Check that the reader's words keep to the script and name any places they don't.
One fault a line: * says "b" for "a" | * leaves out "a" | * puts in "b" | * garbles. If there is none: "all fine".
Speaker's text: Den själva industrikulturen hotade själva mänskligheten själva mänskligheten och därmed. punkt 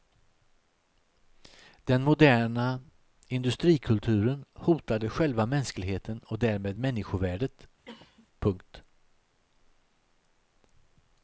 * says "moderna" for "själva"
* leaves out "själva mänskligheten"
* puts in "människovärdet"